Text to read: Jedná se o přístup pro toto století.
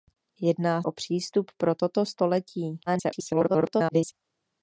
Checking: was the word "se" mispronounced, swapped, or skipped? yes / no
yes